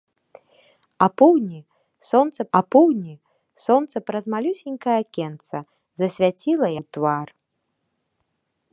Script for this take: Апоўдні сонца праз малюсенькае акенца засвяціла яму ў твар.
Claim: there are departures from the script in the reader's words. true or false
true